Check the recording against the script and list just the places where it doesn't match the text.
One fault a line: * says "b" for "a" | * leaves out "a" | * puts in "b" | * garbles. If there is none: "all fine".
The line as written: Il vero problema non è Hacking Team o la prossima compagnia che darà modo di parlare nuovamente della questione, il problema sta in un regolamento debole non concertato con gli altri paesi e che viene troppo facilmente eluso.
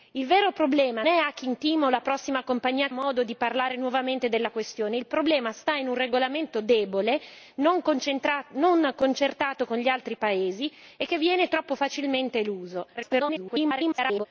* leaves out "non"
* leaves out "che darà"
* garbles